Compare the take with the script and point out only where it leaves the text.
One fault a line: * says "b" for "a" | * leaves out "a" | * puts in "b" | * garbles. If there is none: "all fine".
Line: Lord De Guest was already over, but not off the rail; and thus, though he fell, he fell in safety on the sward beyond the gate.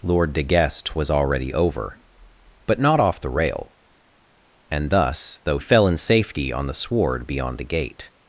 * leaves out "he fell he"